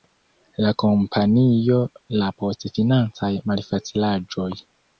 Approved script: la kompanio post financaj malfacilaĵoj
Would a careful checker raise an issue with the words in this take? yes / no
yes